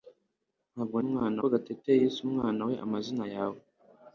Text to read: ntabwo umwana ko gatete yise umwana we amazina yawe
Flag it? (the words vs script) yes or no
no